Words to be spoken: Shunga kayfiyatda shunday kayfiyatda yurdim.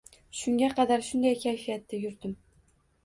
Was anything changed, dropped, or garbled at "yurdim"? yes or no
no